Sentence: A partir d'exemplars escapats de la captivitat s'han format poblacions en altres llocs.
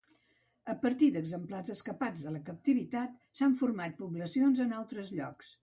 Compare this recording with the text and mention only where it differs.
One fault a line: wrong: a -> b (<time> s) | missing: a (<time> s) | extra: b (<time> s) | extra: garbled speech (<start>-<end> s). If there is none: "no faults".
no faults